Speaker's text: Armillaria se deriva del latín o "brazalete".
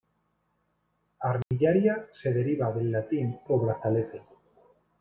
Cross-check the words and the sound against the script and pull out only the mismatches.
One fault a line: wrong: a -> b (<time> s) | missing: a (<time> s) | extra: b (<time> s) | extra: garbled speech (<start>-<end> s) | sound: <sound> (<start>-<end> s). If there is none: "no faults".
sound: dropout (1.4-1.5 s)